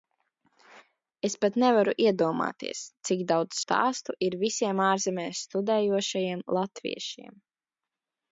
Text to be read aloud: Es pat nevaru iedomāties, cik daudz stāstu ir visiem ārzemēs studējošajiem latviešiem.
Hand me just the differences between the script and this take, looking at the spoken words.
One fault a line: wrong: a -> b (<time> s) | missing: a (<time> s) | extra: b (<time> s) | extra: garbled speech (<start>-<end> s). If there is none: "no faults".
no faults